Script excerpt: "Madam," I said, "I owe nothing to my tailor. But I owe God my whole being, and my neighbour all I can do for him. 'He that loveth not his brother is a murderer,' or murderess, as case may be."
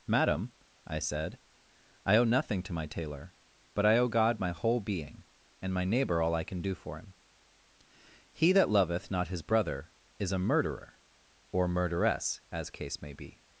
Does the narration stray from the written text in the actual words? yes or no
no